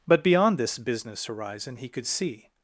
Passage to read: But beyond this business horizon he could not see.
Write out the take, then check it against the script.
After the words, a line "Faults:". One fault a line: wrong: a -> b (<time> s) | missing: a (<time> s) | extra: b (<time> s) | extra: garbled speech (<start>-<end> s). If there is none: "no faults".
But beyond this business horizon he could see.
Faults:
missing: not (2.1 s)